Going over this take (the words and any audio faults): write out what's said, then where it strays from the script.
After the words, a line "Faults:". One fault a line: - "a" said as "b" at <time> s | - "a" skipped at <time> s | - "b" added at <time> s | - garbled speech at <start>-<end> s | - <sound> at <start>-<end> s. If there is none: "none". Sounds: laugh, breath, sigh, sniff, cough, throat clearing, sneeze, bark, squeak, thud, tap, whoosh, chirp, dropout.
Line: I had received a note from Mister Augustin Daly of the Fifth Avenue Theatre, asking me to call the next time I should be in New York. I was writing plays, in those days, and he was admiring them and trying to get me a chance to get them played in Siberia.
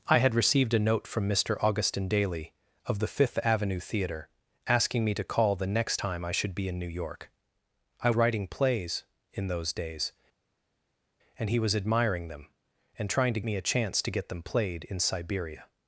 I had received a note from Mister Augustin Daly of the Fifth Avenue Theatre, asking me to call the next time I should be in New York. I writing plays, in those days, and he was admiring them and trying to me a chance to get them played in Siberia.
Faults:
- "was" skipped at 8.1 s
- "get" skipped at 13.4 s